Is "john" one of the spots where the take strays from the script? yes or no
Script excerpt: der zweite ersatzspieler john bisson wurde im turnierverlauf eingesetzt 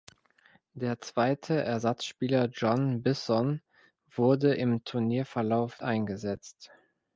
no